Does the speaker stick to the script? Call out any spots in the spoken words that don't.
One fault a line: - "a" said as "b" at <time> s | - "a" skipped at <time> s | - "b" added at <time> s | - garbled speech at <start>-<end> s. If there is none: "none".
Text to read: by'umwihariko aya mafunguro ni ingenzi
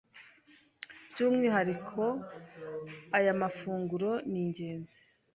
none